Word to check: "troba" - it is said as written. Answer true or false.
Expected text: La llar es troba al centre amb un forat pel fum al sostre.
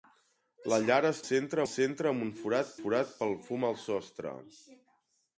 false